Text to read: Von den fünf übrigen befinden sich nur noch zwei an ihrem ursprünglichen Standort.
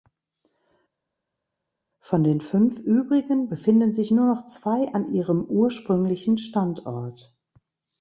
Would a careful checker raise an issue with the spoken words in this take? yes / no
no